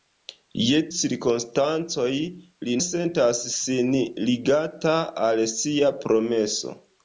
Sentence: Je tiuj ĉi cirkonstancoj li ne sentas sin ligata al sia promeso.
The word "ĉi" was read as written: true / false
false